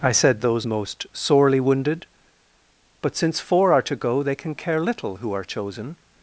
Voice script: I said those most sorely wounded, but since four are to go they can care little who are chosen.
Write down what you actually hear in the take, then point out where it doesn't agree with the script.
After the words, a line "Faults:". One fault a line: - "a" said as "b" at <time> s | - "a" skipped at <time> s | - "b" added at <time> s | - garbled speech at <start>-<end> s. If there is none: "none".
I said those most sorely wounded, but since four are to go they can care little who are chosen.
Faults:
none